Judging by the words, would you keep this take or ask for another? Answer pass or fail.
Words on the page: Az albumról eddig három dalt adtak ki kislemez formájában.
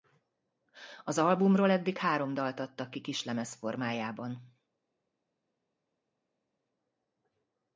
pass